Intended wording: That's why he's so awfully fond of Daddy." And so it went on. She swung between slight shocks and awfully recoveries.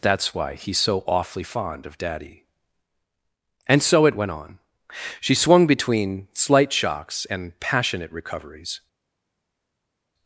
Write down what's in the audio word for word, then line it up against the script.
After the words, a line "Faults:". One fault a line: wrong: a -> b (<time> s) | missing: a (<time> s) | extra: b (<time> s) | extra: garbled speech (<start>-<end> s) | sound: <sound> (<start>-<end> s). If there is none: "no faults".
That's why he's so awfully fond of Daddy." And so it went on. She swung between slight shocks and passionate recoveries.
Faults:
wrong: awfully -> passionate (7.6 s)